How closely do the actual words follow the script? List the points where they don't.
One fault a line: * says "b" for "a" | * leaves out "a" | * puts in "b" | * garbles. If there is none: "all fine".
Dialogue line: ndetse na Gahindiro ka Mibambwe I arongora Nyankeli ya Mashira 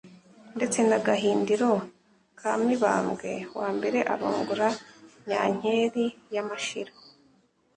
all fine